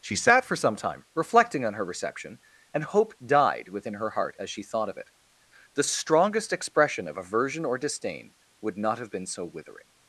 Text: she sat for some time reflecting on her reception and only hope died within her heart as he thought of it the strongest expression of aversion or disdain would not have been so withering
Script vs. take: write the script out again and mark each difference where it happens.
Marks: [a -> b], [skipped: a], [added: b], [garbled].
she sat for some time reflecting on her reception and [skipped: only] hope died within her heart as [he -> she] thought of it the strongest expression of aversion or disdain would not have been so withering